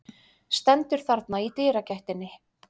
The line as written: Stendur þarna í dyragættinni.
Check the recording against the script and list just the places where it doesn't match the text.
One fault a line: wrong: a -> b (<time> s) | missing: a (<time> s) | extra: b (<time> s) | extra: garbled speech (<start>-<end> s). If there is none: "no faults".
no faults